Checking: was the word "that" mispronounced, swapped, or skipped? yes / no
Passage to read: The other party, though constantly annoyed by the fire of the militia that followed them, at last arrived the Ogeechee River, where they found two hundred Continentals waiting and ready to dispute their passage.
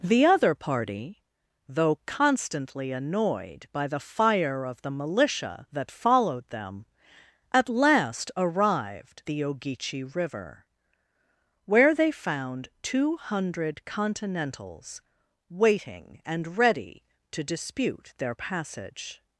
no